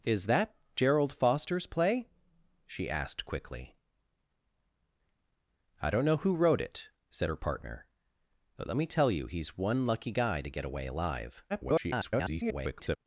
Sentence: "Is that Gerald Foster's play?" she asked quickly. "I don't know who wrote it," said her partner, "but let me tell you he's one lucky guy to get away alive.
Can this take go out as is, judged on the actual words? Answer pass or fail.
fail